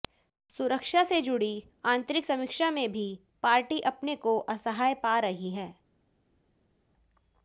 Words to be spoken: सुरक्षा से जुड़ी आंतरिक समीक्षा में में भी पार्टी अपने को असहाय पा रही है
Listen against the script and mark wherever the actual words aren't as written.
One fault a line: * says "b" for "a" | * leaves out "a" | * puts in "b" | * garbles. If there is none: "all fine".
* leaves out "में"